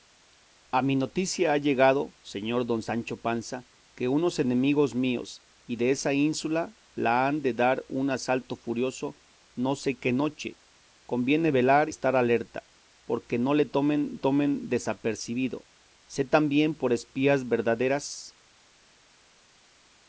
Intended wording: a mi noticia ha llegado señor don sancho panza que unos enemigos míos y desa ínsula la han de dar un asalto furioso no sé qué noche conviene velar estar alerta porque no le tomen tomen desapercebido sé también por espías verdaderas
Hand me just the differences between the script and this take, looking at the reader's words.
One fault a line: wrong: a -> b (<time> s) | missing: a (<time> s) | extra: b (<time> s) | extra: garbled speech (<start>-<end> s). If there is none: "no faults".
no faults